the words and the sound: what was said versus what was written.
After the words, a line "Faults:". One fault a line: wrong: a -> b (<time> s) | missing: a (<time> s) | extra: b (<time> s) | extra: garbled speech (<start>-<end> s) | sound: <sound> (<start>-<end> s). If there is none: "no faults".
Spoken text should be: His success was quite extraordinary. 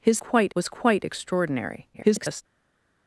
His quite was quite extraordinary. [garbled]
Faults:
wrong: success -> quite (0.2 s)
extra: garbled speech (1.9-2.4 s)